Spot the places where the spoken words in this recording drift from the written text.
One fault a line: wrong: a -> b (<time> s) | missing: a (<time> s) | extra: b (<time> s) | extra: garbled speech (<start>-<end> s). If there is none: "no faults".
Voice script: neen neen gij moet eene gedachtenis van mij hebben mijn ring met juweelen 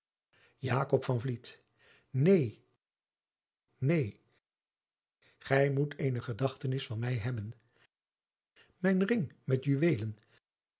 no faults